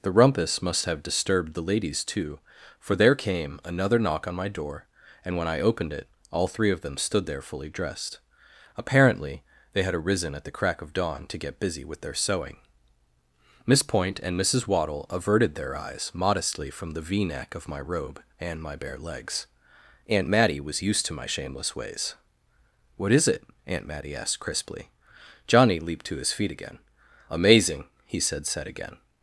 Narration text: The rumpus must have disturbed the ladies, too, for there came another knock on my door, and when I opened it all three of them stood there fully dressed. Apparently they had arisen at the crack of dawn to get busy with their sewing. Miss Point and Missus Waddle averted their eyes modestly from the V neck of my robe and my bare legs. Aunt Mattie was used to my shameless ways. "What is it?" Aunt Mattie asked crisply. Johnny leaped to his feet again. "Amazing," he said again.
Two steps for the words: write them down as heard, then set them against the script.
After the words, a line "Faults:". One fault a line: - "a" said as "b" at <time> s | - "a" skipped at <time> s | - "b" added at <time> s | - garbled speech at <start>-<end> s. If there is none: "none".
The rumpus must have disturbed the ladies, too, for there came another knock on my door, and when I opened it all three of them stood there fully dressed. Apparently they had arisen at the crack of dawn to get busy with their sewing. Miss Point and Missus Waddle averted their eyes modestly from the V neck of my robe and my bare legs. Aunt Mattie was used to my shameless ways. "What is it?" Aunt Mattie asked crisply. Johnny leaped to his feet again. "Amazing," he said said again.
Faults:
- "said" added at 28.5 s